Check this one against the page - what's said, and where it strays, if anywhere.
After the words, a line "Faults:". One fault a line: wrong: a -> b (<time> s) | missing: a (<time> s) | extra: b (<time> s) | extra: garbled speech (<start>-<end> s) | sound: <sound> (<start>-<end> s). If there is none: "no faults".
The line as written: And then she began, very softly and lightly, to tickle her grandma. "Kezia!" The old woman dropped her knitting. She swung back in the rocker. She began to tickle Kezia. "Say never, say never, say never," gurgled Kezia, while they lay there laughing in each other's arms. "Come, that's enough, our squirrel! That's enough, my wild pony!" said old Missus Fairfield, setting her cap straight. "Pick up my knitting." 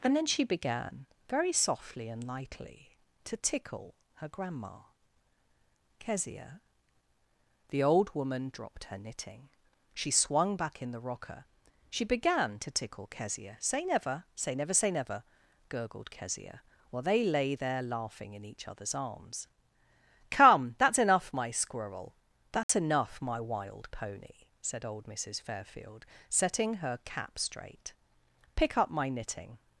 And then she began, very softly and lightly, to tickle her grandma. "Kezia!" The old woman dropped her knitting. She swung back in the rocker. She began to tickle Kezia. "Say never, say never, say never," gurgled Kezia, while they lay there laughing in each other's arms. "Come, that's enough, my squirrel! That's enough, my wild pony!" said old Missus Fairfield, setting her cap straight. "Pick up my knitting."
Faults:
wrong: our -> my (21.3 s)
sound: dropout (22.6-22.7 s)